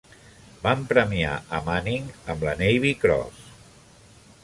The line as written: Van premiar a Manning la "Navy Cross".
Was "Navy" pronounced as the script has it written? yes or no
yes